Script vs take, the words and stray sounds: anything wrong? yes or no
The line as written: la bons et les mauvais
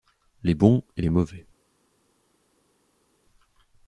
yes